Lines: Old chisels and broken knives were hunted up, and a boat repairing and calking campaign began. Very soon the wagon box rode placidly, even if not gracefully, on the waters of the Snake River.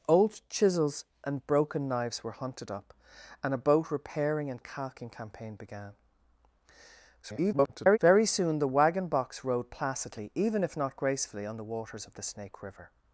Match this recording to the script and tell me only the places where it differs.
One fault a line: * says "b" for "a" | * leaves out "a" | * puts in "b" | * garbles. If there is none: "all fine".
* garbles